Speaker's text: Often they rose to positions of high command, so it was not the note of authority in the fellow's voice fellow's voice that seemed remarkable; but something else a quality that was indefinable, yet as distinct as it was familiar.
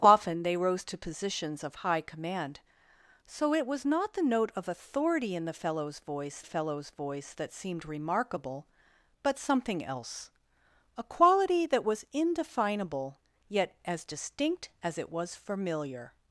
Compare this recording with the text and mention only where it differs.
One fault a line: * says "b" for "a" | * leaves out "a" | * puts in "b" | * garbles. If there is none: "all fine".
all fine